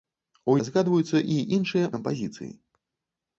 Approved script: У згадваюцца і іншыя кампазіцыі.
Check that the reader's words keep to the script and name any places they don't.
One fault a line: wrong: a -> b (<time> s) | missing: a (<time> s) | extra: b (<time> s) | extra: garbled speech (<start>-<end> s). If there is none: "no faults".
no faults